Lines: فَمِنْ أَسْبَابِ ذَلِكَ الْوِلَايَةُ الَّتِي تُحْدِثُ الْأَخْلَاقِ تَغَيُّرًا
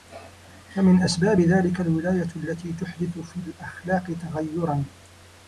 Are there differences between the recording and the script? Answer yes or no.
yes